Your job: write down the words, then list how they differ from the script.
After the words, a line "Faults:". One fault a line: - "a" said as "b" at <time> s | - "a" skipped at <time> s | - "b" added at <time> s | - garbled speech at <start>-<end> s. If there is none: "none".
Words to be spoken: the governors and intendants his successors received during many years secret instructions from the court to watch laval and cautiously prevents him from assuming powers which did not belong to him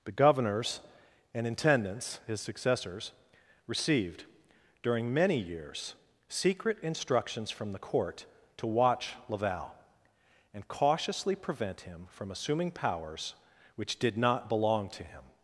the governors and intendants his successors received during many years secret instructions from the court to watch laval and cautiously prevent him from assuming powers which did not belong to him
Faults:
- "prevents" said as "prevent" at 11.3 s